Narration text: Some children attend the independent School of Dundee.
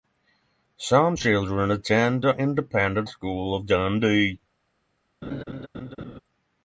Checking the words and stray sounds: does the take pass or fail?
fail